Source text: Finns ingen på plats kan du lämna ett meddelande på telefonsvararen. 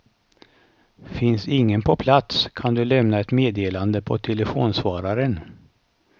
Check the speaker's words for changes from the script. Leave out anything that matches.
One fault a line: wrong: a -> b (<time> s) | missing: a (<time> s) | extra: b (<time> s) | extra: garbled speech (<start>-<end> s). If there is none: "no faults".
no faults